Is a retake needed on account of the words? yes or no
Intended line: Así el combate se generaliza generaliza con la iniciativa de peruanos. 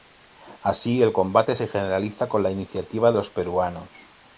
yes